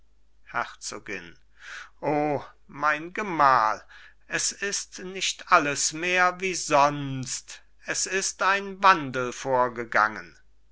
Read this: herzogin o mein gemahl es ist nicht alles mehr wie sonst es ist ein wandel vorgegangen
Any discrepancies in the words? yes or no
no